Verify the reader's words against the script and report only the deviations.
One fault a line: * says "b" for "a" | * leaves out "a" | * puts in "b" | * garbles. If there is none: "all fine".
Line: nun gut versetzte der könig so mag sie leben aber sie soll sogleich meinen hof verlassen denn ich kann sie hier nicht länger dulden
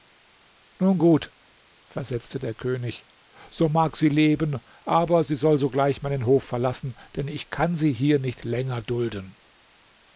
all fine